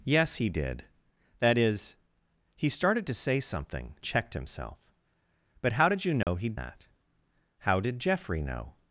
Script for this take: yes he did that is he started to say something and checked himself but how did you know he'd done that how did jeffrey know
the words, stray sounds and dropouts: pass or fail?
fail